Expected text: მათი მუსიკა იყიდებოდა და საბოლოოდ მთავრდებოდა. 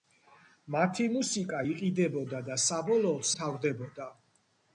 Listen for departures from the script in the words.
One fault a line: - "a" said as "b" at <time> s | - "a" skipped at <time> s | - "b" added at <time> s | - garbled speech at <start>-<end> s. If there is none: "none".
none